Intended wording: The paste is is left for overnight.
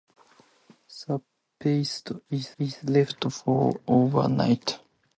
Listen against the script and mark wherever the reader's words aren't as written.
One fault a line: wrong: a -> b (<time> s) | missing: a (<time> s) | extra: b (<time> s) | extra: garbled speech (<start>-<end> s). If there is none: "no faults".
no faults